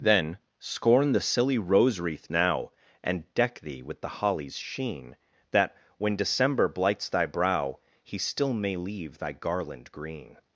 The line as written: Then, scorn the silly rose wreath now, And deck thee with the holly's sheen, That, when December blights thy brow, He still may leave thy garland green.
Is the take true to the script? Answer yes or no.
yes